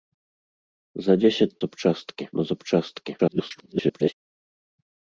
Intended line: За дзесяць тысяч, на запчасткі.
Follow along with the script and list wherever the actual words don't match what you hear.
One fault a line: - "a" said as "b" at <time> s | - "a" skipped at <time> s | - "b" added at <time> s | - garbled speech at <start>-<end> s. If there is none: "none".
- "тысяч" said as "запчасткі" at 1.7 s
- garbled speech at 3.2-4.1 s